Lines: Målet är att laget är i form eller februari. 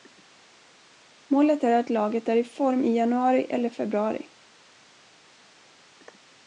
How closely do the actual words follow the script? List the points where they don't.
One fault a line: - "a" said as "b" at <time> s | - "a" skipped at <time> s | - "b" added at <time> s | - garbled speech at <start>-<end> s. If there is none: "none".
- "i januari" added at 2.8 s